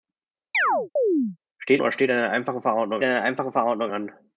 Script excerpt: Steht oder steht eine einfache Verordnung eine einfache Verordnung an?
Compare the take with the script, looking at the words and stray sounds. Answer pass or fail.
fail